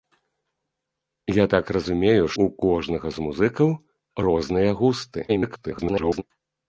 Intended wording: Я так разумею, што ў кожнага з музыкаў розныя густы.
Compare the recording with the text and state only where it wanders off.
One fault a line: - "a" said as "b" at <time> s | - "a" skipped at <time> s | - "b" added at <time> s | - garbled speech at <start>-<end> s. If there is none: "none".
- "што" skipped at 2.2 s
- garbled speech at 5.3-6.2 s